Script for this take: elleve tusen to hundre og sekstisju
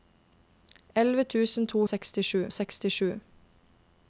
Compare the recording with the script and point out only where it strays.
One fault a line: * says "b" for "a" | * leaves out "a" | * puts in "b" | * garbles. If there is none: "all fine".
* says "sekstisju" for "hundre"